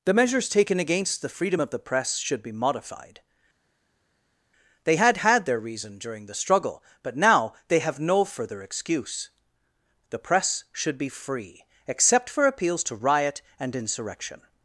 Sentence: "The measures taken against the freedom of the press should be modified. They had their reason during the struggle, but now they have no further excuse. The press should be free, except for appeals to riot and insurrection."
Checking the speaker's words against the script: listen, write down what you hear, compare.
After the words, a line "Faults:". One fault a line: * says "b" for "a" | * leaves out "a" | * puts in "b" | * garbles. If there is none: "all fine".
"The measures taken against the freedom of the press should be modified. They had had their reason during the struggle, but now they have no further excuse. The press should be free, except for appeals to riot and insurrection."
Faults:
* puts in "had"